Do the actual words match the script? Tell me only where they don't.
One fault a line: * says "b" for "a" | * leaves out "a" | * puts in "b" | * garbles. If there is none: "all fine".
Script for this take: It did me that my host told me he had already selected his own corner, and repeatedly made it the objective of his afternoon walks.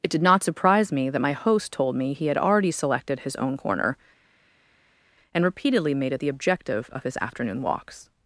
* puts in "not surprise"